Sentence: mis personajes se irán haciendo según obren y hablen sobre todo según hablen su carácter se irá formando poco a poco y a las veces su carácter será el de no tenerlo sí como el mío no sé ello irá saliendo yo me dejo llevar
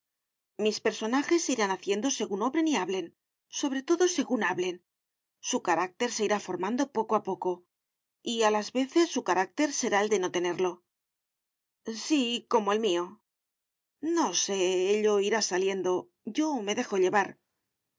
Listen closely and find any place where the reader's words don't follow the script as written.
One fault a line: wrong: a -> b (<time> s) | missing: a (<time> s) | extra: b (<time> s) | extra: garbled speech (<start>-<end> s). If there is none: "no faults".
no faults